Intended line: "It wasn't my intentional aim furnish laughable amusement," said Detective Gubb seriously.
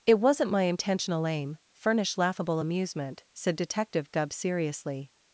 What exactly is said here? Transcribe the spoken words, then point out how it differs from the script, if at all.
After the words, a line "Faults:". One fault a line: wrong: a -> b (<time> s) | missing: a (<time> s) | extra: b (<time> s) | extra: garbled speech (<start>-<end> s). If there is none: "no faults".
"It wasn't my intentional aim furnish laughable amusement," said Detective Gubb seriously.
Faults:
no faults